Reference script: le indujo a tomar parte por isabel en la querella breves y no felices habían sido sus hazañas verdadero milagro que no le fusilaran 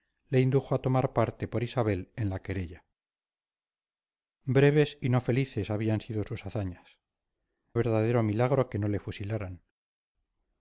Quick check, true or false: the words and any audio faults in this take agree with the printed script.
true